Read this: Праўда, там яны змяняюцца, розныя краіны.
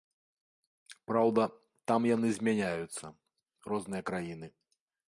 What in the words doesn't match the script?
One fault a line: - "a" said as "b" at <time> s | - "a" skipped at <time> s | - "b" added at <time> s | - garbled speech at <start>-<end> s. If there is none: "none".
none